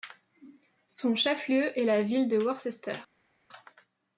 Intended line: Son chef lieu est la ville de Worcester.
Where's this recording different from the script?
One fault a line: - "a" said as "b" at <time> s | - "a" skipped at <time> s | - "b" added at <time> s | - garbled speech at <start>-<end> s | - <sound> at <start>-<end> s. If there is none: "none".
none